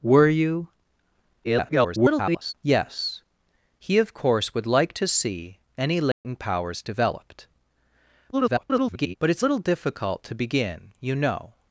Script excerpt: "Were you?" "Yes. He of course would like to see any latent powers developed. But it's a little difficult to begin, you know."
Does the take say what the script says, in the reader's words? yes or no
no